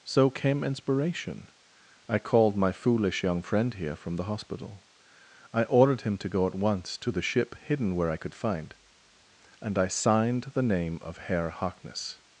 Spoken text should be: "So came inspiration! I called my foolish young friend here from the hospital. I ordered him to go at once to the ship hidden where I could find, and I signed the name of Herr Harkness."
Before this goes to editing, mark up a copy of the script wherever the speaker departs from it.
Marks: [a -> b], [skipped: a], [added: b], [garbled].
"So came inspiration! I called my foolish young friend here from the hospital. I ordered him to go at once to the ship hidden where I could find, and I signed the name of Herr Harkness."